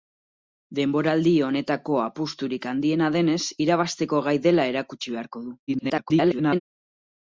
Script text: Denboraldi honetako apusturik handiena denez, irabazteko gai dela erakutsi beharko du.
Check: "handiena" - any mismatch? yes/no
no